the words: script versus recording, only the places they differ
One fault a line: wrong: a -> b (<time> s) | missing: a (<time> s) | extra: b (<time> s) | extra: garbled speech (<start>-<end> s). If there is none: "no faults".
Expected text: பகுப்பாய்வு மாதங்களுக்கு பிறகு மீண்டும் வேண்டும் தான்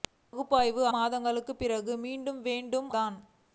no faults